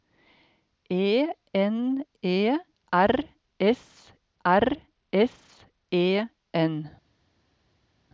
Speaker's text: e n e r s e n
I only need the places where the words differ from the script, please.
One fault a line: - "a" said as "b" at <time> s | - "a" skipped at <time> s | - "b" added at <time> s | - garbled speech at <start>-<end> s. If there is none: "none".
- "r s" added at 4.4 s